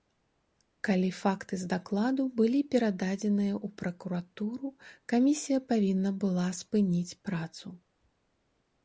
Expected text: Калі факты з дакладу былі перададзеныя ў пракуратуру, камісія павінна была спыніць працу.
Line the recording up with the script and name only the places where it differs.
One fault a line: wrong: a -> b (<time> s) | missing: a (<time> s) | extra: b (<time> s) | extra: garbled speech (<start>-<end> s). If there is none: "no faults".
no faults